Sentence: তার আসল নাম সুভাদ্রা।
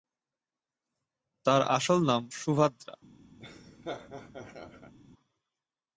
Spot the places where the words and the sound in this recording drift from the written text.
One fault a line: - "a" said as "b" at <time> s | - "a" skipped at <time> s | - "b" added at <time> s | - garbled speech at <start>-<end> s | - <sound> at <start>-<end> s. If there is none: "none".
- laugh at 3.4-4.9 s